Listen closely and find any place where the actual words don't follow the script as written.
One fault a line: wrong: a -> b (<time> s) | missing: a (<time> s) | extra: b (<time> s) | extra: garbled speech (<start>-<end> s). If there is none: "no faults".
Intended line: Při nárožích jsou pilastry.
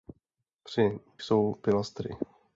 missing: nárožích (1.0 s)